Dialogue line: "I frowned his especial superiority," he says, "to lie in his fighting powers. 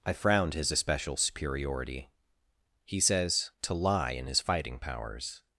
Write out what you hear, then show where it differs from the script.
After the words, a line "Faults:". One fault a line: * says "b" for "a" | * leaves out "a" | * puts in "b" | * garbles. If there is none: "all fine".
"I frowned his especial superiority," he says, "to lie in his fighting powers.
Faults:
all fine